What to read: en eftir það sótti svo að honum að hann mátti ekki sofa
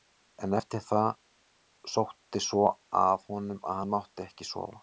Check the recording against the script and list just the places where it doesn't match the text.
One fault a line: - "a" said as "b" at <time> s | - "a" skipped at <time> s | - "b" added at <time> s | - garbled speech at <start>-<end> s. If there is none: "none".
none